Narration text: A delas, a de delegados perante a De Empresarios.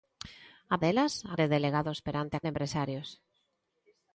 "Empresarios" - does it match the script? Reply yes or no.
yes